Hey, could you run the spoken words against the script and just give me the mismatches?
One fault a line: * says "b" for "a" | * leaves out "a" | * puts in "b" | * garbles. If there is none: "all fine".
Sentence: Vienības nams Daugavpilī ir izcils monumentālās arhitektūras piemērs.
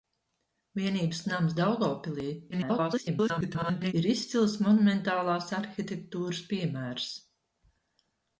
* garbles